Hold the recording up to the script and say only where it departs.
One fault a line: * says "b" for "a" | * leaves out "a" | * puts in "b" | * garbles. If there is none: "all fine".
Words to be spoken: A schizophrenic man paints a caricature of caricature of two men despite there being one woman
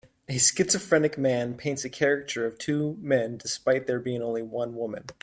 * leaves out "caricature of"
* puts in "only"